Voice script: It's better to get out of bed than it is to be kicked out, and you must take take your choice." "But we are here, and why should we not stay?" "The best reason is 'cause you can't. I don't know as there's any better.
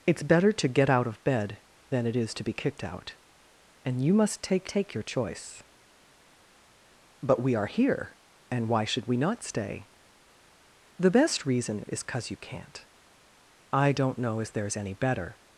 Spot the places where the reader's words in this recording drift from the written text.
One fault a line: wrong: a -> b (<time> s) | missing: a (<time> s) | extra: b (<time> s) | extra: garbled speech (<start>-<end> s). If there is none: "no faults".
no faults